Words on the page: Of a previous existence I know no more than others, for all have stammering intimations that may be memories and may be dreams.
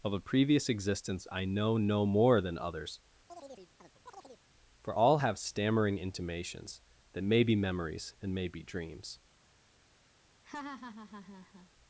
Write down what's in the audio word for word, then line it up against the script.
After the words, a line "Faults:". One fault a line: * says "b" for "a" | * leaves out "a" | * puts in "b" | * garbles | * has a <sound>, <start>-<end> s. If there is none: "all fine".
Of a previous existence I know no more than others, for all have stammering intimations that may be memories and may be dreams.
Faults:
* has a chirp, 3.3-4.4 s
* has a laugh, 10.4-11.7 s